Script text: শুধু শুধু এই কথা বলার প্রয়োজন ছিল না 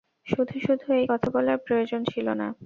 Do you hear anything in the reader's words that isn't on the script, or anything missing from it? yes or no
no